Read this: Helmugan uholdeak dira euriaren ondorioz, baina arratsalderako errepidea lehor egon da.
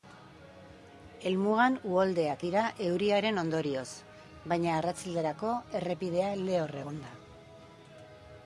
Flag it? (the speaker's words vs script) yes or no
no